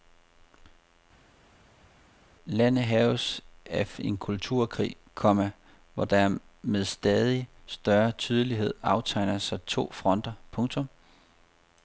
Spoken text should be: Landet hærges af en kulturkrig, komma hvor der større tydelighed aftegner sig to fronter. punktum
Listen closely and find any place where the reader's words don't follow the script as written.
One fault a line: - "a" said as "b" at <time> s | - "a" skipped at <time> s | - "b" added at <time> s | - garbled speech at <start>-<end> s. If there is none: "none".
- "med stadig" added at 6.6 s